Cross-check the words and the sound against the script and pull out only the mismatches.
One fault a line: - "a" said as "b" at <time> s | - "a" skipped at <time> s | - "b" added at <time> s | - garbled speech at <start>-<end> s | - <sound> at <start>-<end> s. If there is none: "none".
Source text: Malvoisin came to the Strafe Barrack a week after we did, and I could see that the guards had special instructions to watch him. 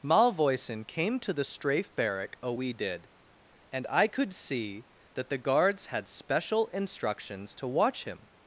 - "week after" skipped at 2.5 s